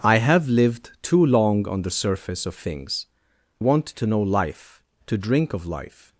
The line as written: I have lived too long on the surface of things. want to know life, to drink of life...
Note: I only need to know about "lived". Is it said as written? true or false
true